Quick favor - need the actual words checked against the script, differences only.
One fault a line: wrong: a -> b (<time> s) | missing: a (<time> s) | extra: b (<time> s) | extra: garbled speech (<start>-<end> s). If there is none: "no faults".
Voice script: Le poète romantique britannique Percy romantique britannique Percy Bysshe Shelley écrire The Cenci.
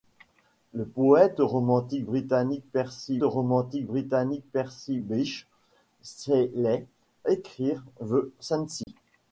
no faults